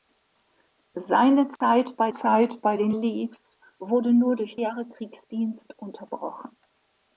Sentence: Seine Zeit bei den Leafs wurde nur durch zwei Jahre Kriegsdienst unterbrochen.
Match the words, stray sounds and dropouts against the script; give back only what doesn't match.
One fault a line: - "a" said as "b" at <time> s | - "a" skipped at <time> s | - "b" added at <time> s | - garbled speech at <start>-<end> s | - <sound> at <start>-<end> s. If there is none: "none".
- dropout at 1.6-1.6 s
- "Zeit bei" added at 2.1 s
- "zwei" skipped at 4.6 s